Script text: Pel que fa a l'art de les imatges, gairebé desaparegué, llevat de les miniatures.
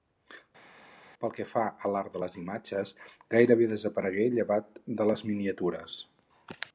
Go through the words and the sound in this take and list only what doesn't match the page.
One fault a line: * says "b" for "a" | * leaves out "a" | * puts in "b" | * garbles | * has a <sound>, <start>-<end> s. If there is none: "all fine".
all fine